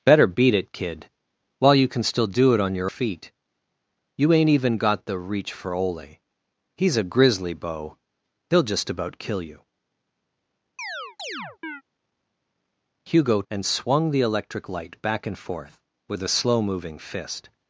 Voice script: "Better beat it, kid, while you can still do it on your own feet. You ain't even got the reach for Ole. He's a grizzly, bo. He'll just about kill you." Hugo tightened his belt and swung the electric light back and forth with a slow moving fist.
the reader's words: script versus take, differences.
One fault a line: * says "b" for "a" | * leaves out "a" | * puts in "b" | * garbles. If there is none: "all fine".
* leaves out "own"
* leaves out "tightened his belt"